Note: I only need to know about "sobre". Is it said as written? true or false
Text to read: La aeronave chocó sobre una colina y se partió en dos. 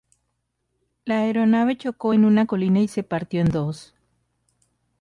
false